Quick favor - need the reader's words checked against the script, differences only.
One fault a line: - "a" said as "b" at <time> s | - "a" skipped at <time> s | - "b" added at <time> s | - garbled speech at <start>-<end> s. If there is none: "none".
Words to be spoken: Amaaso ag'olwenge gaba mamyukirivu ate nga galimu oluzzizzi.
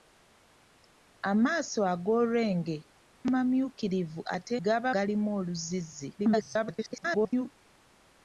- "gaba" skipped at 2.8 s
- "nga" said as "gaba" at 4.6 s
- garbled speech at 6.2-7.5 s